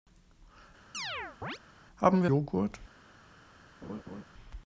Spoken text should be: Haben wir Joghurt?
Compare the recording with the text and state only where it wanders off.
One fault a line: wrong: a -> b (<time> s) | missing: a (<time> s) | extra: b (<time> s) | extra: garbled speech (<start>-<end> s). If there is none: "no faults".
no faults